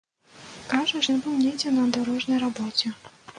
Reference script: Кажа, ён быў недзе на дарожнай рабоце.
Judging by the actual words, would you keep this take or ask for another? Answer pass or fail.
pass